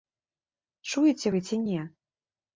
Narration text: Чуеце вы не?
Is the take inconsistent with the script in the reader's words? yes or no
yes